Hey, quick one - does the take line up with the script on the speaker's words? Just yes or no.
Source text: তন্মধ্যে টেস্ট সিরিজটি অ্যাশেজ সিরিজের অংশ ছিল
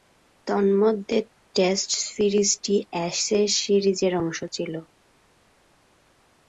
yes